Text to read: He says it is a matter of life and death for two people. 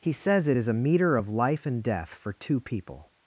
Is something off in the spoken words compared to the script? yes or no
yes